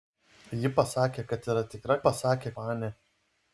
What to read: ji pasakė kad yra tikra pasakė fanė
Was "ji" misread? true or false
false